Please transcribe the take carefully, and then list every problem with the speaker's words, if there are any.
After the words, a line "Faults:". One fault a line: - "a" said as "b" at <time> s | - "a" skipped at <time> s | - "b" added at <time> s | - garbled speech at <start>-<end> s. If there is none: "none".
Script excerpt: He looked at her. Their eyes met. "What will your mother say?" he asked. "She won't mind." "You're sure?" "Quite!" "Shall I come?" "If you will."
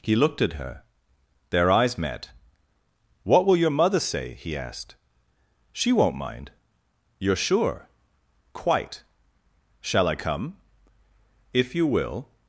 He looked at her. Their eyes met. "What will your mother say?" he asked. "She won't mind." "You're sure?" "Quite!" "Shall I come?" "If you will."
Faults:
none